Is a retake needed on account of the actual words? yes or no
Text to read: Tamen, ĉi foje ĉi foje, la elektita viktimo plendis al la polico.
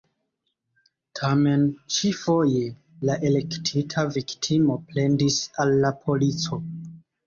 yes